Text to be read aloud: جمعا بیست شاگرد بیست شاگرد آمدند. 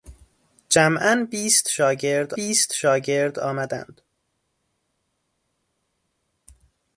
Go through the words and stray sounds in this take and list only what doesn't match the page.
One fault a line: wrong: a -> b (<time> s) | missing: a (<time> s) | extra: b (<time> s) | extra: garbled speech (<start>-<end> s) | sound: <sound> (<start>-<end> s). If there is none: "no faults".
no faults